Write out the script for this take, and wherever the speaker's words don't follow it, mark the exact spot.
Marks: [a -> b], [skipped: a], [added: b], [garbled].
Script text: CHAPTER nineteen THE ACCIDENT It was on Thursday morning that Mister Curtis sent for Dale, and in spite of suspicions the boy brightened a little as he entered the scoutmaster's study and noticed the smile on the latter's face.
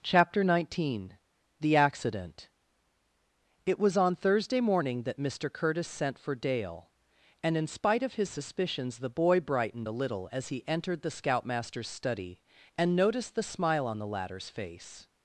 CHAPTER nineteen THE ACCIDENT It was on Thursday morning that Mister Curtis sent for Dale, and in spite of [added: his] suspicions the boy brightened a little as he entered the scoutmaster's study and noticed the smile on the latter's face.